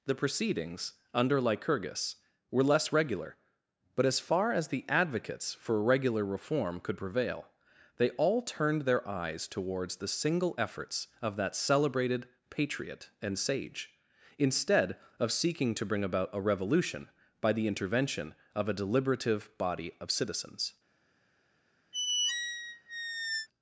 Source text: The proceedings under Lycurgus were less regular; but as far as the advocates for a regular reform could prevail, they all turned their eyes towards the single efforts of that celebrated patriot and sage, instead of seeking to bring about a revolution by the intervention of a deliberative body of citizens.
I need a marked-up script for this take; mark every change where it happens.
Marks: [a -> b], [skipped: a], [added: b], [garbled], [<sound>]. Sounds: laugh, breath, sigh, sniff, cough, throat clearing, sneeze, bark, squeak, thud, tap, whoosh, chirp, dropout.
The proceedings under Lycurgus were less regular; but as far as the advocates for [skipped: a] regular reform could prevail, they all turned their eyes towards the single efforts of that celebrated patriot and sage, instead of seeking to bring about a revolution by the intervention of a deliberative body of citizens. [squeak]